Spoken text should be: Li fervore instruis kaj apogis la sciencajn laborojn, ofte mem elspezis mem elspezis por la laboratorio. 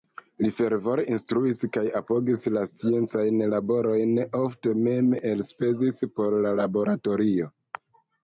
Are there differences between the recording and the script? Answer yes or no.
yes